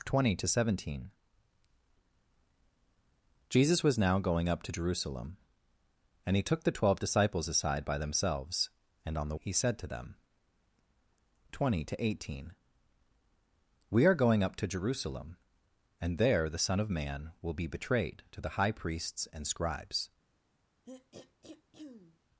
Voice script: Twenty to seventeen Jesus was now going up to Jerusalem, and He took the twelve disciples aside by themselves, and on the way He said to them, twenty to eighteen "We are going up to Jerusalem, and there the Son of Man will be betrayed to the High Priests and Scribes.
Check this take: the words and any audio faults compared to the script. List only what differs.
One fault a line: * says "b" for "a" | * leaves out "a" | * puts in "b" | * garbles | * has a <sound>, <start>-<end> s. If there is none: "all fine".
* leaves out "way"
* has a throat clearing, 20.8-22.2 s